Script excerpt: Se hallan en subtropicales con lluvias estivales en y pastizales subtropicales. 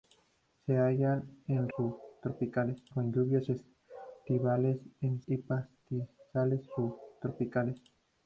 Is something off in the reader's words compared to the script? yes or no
no